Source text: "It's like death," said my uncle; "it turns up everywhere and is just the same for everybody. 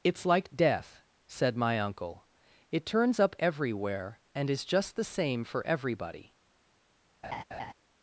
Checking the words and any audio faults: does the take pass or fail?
fail